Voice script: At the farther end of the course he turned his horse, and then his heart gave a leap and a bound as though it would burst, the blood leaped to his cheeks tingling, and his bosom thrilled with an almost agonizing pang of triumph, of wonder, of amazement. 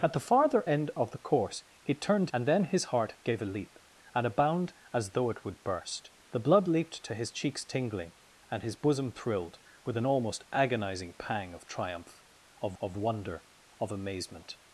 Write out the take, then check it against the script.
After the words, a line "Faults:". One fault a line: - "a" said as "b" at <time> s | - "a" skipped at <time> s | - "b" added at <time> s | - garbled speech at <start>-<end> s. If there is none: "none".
At the farther end of the course he turned and then his heart gave a leap and a bound as though it would burst, the blood leaped to his cheeks tingling, and his bosom thrilled with an almost agonizing pang of triumph, of of wonder, of amazement.
Faults:
- "his horse" skipped at 2.3 s
- "of" added at 12.8 s